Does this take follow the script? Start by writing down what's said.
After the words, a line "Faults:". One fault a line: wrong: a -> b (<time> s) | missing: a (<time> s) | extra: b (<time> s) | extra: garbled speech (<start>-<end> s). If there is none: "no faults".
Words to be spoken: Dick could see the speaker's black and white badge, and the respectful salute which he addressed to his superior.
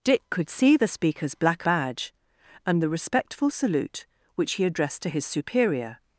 Dick could see the speaker's black badge, and the respectful salute which he addressed to his superior.
Faults:
missing: and white (1.7 s)